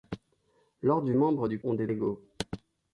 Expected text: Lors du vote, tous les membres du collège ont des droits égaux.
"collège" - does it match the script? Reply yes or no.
no